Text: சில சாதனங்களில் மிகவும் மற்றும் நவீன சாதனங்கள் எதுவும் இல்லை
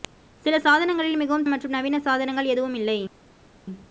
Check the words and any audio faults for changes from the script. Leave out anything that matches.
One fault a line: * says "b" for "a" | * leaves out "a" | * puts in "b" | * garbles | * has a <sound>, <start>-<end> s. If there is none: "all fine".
all fine